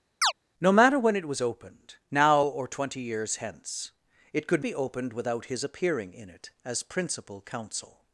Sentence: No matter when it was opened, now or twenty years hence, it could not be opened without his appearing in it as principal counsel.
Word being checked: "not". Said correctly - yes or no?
no